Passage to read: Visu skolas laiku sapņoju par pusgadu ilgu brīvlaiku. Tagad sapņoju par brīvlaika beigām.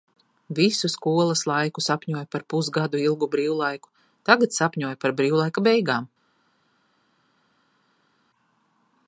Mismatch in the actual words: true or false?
false